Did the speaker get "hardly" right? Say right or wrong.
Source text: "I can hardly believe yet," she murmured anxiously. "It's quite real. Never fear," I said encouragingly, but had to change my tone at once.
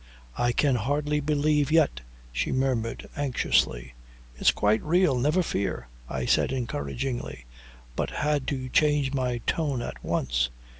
right